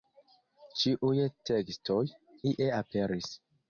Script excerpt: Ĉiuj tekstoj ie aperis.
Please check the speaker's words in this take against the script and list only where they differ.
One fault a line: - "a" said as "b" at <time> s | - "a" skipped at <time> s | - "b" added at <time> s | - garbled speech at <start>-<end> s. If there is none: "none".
none